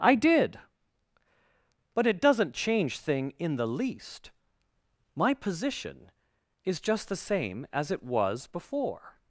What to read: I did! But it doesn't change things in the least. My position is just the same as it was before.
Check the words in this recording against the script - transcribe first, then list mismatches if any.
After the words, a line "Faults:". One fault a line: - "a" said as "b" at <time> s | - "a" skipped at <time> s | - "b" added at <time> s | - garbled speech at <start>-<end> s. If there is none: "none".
I did! But it doesn't change thing in the least. My position is just the same as it was before.
Faults:
- "things" said as "thing" at 3.0 s